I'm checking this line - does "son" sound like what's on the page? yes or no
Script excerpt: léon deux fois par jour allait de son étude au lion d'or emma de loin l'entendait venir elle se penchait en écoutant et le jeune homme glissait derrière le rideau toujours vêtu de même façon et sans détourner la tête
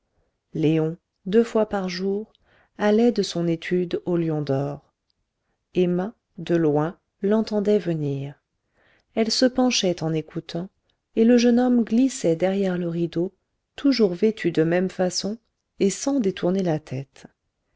yes